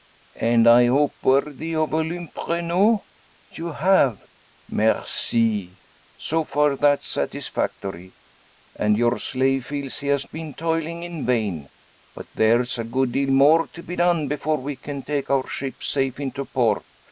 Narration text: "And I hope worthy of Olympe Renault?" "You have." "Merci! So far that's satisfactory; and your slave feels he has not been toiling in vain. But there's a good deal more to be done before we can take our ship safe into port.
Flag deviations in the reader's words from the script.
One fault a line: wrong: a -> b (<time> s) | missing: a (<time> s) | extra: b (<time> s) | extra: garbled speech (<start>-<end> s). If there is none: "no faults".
missing: not (10.2 s)